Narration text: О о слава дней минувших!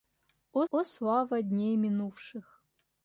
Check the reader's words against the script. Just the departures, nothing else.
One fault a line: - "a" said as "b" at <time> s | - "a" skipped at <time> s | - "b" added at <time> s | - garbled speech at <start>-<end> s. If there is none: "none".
none